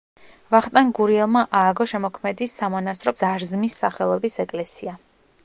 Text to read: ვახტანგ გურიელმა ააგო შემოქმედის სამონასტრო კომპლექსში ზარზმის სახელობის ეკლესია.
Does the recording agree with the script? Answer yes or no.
no